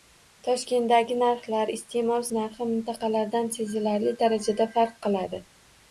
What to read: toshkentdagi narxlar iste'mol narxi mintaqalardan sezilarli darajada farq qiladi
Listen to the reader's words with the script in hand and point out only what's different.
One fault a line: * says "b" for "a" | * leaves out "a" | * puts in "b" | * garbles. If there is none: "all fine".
all fine